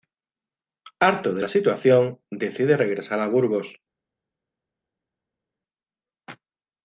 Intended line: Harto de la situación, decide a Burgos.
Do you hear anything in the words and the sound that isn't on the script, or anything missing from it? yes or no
yes